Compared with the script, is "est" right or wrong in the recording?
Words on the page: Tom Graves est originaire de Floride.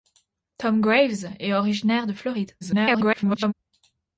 right